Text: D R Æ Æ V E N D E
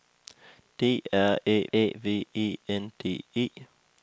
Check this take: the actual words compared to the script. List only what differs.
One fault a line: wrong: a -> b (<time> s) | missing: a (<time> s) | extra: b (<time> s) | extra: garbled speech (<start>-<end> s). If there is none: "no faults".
no faults